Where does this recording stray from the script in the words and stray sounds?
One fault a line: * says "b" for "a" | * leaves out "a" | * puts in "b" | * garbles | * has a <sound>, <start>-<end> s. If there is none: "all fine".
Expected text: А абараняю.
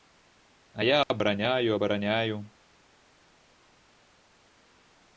* puts in "я абараняю"